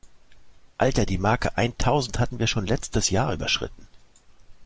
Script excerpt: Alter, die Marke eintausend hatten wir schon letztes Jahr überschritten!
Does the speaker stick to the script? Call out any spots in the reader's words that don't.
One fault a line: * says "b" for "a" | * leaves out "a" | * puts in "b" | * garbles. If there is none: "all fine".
all fine